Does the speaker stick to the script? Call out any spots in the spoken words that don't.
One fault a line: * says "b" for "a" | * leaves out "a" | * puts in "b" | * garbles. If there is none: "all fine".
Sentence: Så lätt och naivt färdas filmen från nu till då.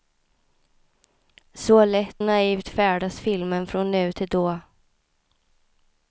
* leaves out "och"